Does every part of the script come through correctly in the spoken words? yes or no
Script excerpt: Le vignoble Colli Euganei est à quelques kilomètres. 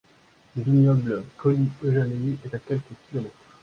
yes